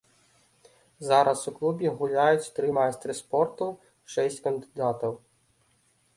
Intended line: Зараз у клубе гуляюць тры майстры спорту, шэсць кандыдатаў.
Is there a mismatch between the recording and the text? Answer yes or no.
no